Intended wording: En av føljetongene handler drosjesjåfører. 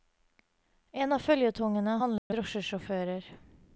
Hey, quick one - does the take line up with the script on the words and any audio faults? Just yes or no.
no